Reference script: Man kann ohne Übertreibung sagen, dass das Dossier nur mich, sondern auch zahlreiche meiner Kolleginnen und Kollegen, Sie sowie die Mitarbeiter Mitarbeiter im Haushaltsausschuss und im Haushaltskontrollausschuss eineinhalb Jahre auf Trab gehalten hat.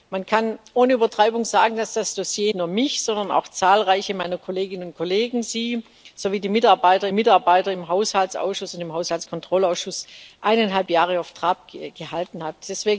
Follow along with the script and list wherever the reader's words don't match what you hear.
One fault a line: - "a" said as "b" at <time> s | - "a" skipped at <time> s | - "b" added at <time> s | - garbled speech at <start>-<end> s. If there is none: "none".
none